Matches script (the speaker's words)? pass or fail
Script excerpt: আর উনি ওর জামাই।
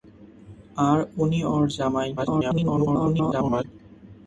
fail